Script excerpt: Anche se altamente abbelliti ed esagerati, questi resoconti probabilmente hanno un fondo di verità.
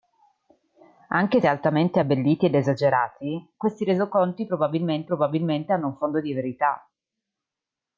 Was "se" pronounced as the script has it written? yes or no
no